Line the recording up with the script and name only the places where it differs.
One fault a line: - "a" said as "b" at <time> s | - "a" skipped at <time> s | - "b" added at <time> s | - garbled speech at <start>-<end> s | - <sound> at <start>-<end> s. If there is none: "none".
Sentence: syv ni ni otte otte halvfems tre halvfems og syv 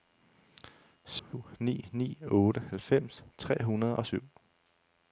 - dropout at 1.2-1.3 s
- "otte" skipped at 2.6 s
- "halvfems" said as "hundrede" at 3.6 s